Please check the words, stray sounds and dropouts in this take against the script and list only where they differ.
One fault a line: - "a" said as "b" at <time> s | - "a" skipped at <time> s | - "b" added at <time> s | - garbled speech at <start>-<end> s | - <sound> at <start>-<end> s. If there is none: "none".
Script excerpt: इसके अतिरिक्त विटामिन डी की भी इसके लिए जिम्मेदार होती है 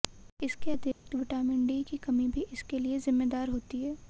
- dropout at 0.9-1.1 s
- "कमी" added at 2.0 s